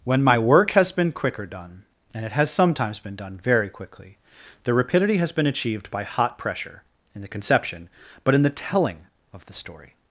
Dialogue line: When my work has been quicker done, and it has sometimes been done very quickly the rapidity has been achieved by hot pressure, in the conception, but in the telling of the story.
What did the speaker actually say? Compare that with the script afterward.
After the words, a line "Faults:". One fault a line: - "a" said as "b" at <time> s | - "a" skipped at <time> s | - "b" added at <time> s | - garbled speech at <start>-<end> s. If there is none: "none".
When my work has been quicker done, and it has sometimes been done very quickly the rapidity has been achieved by hot pressure, in the conception, but in the telling of the story.
Faults:
none